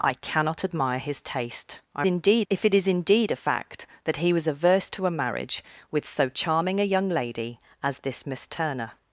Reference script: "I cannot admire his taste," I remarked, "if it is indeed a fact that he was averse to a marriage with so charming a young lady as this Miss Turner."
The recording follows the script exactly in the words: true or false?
false